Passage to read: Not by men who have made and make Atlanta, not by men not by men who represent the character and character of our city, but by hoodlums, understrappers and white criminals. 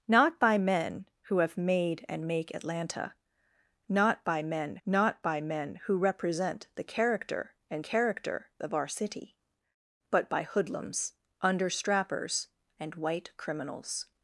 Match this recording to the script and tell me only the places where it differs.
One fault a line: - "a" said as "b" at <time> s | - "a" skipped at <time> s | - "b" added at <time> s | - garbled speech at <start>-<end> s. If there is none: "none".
none